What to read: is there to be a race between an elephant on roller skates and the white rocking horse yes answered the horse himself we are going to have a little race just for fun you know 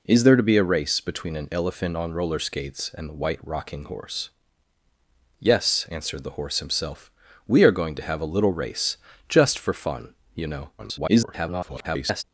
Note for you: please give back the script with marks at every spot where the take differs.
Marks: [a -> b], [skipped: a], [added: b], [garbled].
is there to be a race between an elephant on roller skates and the white rocking horse yes answered the horse himself we are going to have a little race just for fun you know [garbled]